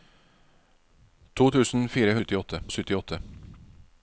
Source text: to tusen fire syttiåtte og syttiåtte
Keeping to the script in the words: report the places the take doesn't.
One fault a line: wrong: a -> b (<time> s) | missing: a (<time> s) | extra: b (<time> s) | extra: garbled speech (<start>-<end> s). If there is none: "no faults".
no faults